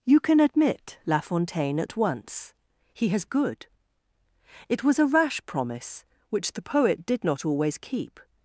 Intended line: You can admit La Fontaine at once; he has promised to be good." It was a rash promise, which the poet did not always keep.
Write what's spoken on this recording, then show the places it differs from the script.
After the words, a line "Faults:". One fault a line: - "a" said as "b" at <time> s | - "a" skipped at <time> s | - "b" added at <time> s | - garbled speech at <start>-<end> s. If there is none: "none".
You can admit La Fontaine at once; he has good." It was a rash promise, which the poet did not always keep.
Faults:
- "promised to be" skipped at 3.2 s